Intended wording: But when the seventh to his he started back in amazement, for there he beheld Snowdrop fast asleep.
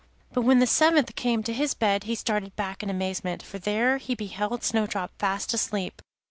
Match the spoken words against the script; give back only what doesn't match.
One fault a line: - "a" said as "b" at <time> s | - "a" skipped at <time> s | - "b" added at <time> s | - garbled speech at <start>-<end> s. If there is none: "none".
- "came" added at 1.1 s
- "bed" added at 1.8 s